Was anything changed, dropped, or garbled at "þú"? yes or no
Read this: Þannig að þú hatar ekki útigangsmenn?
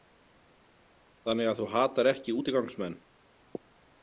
no